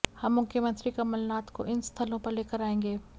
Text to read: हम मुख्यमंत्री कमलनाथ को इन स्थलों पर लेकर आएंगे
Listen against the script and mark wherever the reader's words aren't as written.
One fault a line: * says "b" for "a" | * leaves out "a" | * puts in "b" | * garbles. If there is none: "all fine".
all fine